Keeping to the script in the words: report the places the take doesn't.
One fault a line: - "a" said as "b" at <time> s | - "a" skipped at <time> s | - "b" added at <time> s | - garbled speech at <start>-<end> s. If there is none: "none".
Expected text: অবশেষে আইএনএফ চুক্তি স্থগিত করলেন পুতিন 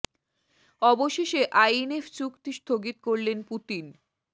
none